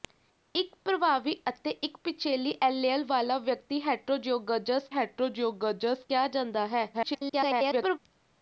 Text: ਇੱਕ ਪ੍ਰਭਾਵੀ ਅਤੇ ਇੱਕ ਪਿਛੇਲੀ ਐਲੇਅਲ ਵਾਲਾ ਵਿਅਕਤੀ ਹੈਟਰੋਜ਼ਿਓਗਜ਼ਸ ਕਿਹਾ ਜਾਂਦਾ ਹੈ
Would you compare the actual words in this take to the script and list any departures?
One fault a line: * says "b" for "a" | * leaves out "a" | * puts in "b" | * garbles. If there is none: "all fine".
* puts in "ਹੈਟਰੋਜ਼ਿਓਗਜ਼ਸ"
* garbles